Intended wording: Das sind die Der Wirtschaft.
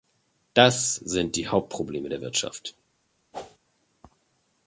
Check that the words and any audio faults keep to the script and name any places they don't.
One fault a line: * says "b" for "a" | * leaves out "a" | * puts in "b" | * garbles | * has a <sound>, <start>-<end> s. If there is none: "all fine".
* puts in "Hauptprobleme"
* has a whoosh, 3.3-3.6 s